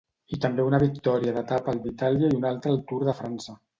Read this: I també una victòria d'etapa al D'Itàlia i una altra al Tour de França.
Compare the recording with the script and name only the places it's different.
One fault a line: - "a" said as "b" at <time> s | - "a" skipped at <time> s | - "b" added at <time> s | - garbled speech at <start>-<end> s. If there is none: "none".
none